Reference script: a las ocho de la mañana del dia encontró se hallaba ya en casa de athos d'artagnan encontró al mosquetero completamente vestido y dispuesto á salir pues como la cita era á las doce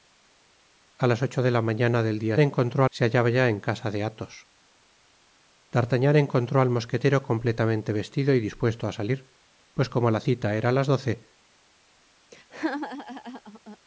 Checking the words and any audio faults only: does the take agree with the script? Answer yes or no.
no